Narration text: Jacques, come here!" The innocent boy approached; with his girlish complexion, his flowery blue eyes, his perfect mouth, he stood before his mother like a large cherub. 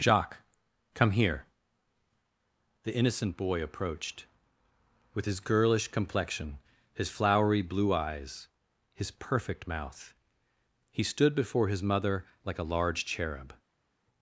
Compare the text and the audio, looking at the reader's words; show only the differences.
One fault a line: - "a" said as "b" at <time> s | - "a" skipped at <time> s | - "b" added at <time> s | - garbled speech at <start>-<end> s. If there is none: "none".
none